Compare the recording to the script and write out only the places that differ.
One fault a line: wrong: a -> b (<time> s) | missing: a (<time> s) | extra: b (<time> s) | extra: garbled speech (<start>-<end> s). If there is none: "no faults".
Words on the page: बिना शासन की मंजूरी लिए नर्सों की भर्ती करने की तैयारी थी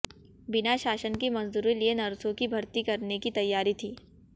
no faults